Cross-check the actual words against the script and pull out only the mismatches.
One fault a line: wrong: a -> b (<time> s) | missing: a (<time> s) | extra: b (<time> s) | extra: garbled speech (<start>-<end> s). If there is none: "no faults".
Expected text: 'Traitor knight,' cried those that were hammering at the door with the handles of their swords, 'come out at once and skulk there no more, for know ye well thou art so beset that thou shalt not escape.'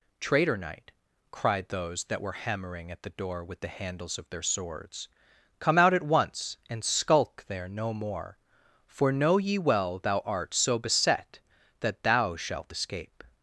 missing: not (12.7 s)